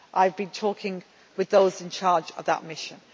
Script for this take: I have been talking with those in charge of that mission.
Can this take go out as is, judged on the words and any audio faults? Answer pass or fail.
pass